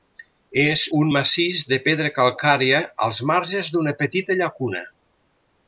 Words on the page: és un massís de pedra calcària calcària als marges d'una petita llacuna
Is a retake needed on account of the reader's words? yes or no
yes